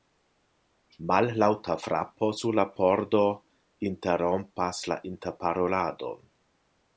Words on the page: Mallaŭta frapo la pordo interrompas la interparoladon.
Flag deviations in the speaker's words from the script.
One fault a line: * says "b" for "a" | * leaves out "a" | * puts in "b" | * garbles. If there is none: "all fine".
* puts in "sur"